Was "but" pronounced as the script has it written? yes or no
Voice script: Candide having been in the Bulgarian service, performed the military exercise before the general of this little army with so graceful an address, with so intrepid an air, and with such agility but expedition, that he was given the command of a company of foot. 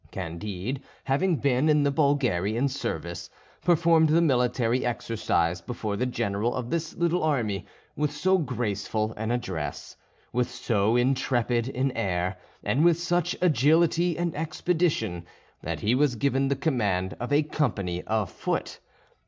no